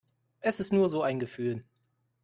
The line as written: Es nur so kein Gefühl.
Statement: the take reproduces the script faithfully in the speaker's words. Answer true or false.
false